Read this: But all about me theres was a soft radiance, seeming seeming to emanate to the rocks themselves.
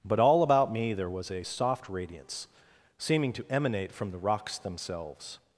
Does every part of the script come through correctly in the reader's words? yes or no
no